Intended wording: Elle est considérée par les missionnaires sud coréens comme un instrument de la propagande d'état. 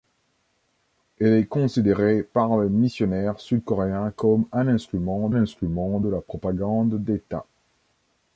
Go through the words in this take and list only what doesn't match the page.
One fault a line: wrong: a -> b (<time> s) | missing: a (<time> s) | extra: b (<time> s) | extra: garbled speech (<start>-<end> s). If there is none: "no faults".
extra: instrument (5.3 s)